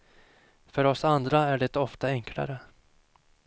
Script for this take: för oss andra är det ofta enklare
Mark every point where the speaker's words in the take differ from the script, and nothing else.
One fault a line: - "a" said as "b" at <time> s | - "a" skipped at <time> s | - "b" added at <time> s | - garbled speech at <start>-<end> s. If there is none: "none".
none